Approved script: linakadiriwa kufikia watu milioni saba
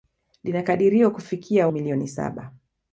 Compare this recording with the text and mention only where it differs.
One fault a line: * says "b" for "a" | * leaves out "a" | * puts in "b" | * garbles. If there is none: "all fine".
* leaves out "watu"